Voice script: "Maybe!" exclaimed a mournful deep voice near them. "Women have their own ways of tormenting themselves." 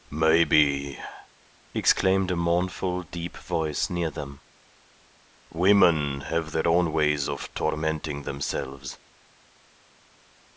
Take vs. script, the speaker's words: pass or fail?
pass